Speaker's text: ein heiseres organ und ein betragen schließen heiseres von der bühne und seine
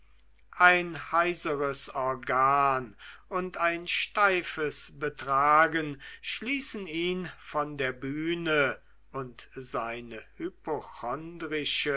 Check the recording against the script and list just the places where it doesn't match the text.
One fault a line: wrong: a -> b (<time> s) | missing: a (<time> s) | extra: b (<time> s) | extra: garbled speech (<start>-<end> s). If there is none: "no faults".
extra: steifes (3.9 s)
wrong: heiseres -> ihn (6.9 s)